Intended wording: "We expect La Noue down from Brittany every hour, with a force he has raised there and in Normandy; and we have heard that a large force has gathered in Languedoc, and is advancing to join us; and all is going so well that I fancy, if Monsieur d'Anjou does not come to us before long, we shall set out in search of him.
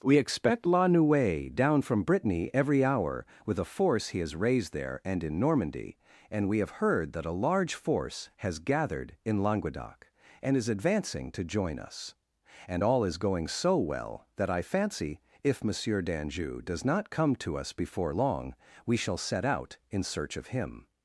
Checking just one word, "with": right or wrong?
right